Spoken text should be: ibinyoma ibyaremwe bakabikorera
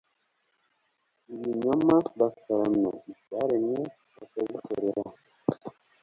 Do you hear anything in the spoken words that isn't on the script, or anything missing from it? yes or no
yes